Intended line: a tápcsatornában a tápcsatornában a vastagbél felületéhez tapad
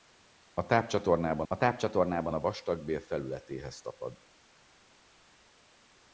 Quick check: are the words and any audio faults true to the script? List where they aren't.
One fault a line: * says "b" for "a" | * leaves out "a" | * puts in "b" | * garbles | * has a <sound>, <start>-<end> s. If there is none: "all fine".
all fine